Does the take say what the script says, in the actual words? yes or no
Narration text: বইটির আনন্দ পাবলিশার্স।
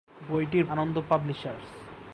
yes